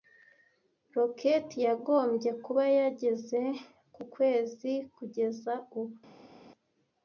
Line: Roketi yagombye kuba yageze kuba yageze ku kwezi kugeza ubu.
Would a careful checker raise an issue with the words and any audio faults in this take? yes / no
yes